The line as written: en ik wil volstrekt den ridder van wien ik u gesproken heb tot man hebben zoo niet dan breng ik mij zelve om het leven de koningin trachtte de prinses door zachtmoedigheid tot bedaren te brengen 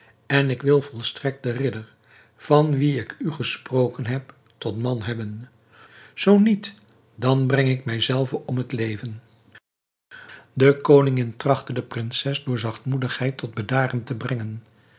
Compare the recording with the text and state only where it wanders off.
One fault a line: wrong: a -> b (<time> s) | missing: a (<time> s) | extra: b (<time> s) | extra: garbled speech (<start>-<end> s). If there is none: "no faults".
no faults